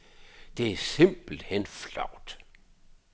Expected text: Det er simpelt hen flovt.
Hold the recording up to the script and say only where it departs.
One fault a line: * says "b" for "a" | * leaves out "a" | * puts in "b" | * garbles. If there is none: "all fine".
all fine